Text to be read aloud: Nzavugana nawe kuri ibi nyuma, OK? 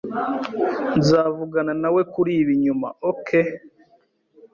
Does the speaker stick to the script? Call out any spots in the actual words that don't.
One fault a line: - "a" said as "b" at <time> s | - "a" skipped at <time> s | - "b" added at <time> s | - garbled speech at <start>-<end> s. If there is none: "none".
none